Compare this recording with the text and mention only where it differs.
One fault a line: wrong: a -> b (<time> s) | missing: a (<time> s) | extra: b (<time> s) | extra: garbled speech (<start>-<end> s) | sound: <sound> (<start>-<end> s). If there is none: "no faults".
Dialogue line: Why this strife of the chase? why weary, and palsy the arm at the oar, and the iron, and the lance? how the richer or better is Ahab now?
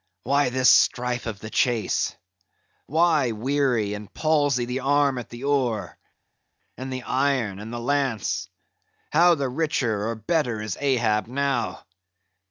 no faults